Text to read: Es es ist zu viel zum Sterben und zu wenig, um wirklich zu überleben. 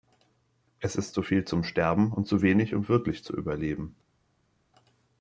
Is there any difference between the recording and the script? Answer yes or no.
yes